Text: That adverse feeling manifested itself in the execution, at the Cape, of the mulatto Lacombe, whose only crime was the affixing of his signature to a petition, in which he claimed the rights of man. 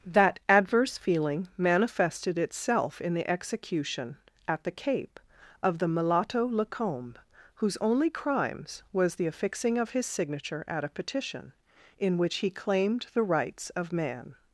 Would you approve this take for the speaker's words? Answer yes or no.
no